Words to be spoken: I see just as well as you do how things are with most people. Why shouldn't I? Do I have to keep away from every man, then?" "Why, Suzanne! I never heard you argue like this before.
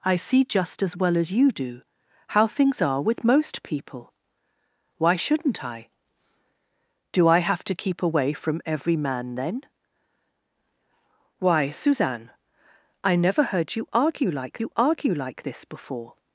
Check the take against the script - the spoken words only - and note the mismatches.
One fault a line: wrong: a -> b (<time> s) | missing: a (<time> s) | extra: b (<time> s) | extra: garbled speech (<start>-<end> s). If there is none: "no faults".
extra: you argue like (14.6 s)